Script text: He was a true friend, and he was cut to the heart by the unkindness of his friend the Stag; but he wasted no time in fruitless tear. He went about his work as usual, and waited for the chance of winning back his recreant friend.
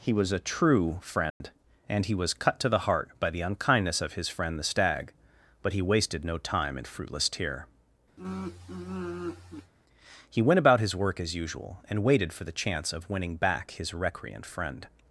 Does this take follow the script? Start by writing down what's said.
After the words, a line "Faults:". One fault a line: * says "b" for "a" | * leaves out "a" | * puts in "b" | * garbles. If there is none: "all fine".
He was a true friend, and he was cut to the heart by the unkindness of his friend the Stag; but he wasted no time in fruitless tear. He went about his work as usual, and waited for the chance of winning back his recreant friend.
Faults:
all fine